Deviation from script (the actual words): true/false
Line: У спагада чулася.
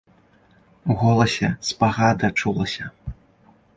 true